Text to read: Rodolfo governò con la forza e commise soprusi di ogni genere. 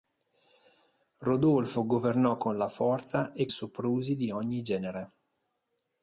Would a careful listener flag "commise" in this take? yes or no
yes